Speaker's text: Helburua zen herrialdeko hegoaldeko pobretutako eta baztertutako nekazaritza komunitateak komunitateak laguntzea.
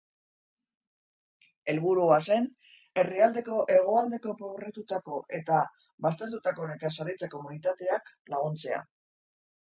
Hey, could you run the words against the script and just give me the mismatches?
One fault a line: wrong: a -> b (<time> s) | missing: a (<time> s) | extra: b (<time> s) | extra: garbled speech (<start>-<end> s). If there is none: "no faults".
missing: komunitateak (8.1 s)